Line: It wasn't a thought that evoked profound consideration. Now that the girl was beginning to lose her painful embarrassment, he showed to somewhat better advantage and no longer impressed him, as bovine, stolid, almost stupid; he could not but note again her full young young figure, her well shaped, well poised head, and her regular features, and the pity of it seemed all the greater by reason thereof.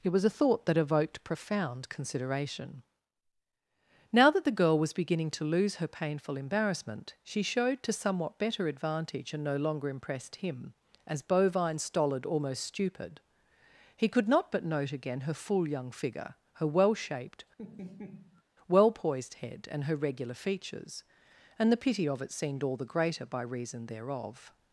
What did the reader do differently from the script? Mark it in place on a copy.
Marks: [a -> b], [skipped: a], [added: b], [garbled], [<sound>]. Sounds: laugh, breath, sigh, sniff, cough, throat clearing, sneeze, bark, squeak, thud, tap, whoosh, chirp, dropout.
It [wasn't -> was] a thought that evoked profound consideration. Now that the girl was beginning to lose her painful embarrassment, [he -> she] showed to somewhat better advantage and no longer impressed him, as bovine, stolid, almost stupid; he could not but note again her full young [skipped: young] figure, her well shaped, [laugh] well poised head, and her regular features, and the pity of it seemed all the greater by reason thereof.